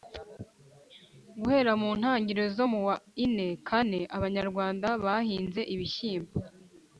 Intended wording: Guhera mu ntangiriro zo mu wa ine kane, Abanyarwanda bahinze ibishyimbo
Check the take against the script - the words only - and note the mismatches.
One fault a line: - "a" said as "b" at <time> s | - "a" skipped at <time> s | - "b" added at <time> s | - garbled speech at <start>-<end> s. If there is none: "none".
none